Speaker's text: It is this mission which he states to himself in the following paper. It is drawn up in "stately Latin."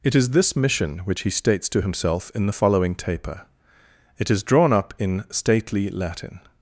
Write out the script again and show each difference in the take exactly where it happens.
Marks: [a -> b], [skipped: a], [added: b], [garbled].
It is this mission which he states to himself in the following [paper. -> taper] It is drawn up in "stately Latin."